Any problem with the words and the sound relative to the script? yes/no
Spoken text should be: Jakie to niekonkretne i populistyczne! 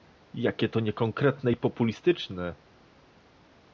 no